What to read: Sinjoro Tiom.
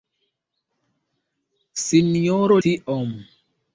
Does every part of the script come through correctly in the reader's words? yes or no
yes